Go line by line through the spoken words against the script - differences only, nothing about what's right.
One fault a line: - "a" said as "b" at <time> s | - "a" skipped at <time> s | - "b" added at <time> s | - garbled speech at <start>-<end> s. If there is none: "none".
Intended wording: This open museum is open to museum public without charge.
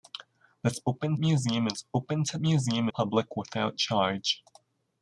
none